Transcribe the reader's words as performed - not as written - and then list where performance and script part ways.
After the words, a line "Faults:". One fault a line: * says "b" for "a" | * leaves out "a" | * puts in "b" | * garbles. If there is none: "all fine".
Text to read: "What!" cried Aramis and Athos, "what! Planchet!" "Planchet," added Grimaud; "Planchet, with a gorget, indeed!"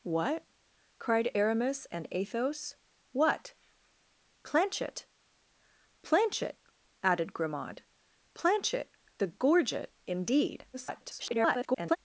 "What!" cried Aramis and Athos, "what! Planchet!" "Planchet," added Grimaud; "Planchet, a gorget, indeed!" [garbled]
Faults:
* leaves out "with"
* garbles